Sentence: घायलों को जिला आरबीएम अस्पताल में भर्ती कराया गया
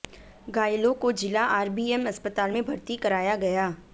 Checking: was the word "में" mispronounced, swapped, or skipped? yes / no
no